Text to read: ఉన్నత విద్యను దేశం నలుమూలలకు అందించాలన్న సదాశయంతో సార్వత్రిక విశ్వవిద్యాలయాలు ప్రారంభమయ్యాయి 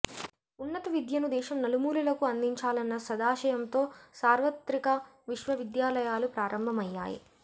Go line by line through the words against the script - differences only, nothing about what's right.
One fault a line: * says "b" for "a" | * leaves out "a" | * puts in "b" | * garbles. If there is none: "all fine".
all fine